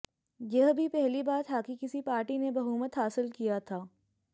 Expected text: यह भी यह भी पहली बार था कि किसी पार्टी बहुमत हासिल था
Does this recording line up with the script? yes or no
no